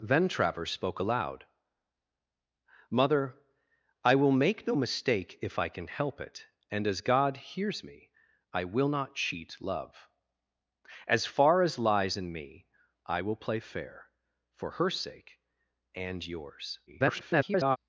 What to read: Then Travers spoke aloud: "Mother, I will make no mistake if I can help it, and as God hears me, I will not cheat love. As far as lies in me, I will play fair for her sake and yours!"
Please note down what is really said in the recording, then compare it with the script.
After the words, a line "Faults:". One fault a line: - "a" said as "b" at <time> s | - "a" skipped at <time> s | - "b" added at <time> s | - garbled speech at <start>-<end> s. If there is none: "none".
Then Travers spoke aloud: "Mother, I will make no mistake if I can help it, and as God hears me, I will not cheat love. As far as lies in me, I will play fair for her sake and yours!" [garbled]
Faults:
- garbled speech at 16.9-17.8 s